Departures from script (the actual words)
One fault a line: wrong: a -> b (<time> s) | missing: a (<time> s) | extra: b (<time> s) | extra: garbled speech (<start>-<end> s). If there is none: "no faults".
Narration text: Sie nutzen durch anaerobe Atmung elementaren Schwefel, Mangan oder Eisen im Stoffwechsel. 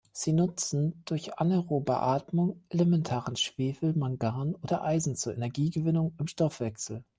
extra: zur Energiegewinnung (5.2 s)